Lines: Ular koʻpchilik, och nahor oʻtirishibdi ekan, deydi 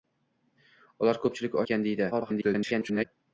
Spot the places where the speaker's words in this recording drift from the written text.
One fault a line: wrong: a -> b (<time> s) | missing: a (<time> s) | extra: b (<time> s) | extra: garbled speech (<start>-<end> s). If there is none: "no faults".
missing: och nahor oʻtirishibdi (1.6 s)
extra: garbled speech (2.1-3.1 s)